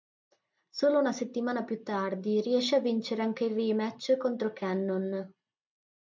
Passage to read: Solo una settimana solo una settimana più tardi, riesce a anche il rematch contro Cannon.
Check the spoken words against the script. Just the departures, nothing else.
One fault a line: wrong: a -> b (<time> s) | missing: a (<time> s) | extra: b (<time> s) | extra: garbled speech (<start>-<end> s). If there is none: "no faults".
missing: solo una settimana (1.6 s)
extra: vincere (2.8 s)